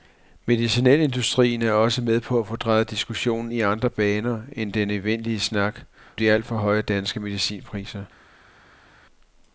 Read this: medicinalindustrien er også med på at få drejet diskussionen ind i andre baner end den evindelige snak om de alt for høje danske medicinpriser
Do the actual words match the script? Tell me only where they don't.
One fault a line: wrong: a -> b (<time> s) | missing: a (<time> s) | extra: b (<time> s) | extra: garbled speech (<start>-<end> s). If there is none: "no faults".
missing: ind (3.5 s)
missing: om (5.8 s)